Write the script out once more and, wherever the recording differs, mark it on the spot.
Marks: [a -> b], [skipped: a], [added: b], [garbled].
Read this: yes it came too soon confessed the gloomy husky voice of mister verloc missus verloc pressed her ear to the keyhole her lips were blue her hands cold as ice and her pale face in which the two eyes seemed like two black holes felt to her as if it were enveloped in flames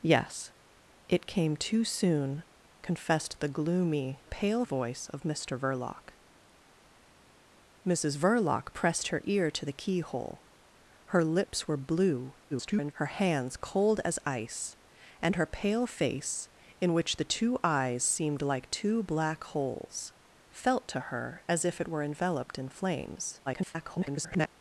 yes it came too soon confessed the gloomy [husky -> pale] voice of mister verloc missus verloc pressed her ear to the keyhole her lips were blue [garbled] her hands cold as ice and her pale face in which the two eyes seemed like two black holes felt to her as if it were enveloped in flames [garbled]